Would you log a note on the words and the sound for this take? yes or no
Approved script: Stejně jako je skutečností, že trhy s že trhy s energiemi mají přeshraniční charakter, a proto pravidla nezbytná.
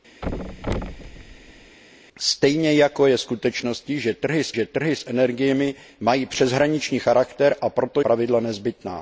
yes